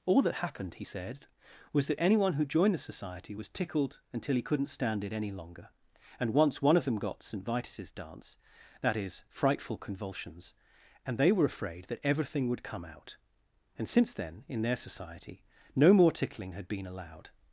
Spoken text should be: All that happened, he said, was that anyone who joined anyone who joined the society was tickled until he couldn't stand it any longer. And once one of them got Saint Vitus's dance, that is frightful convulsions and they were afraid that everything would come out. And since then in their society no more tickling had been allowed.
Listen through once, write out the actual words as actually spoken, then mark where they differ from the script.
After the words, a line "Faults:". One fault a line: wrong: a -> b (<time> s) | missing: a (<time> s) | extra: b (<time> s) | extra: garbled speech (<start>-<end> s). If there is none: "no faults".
All that happened, he said, was that anyone who joined the society was tickled until he couldn't stand it any longer. And once one of them got Saint Vitus's dance, that is frightful convulsions and they were afraid that everything would come out. And since then in their society no more tickling had been allowed.
Faults:
missing: anyone who joined (2.7 s)